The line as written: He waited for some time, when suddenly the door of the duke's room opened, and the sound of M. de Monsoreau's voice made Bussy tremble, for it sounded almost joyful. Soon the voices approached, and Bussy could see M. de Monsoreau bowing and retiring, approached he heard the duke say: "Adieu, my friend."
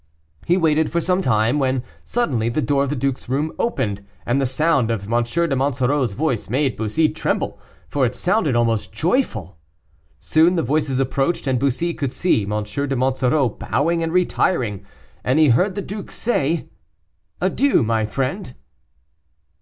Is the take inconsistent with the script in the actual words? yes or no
yes